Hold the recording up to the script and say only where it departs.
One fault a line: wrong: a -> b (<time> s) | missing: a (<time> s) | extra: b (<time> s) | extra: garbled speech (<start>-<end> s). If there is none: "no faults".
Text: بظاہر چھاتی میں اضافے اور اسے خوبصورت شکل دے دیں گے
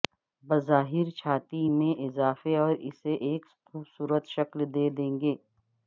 extra: ایک (3.3 s)